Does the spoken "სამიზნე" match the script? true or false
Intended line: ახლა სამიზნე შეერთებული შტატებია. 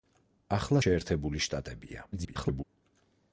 false